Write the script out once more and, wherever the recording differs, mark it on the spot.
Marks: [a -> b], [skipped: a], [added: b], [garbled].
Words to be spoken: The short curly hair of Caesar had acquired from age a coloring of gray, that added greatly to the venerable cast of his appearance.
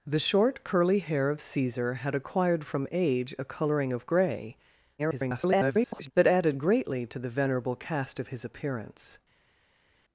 The short curly hair of Caesar had acquired from age a coloring of gray, [garbled] that added greatly to the venerable cast of his appearance.